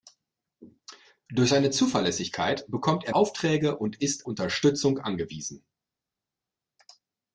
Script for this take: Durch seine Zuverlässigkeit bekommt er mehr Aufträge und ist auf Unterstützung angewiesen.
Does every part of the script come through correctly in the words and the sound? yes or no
no